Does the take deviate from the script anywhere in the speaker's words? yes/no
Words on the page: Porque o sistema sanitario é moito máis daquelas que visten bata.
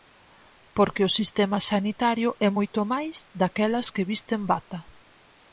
no